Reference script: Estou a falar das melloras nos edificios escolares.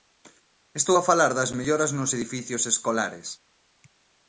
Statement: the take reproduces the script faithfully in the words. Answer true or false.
true